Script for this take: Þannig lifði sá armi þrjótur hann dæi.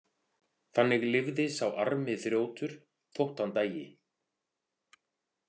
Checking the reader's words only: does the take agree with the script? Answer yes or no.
no